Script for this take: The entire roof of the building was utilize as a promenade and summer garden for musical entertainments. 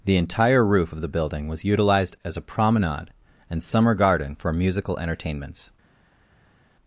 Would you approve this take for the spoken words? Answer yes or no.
no